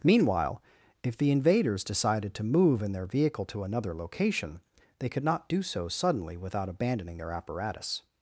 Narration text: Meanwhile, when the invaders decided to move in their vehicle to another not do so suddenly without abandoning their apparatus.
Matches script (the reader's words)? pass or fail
fail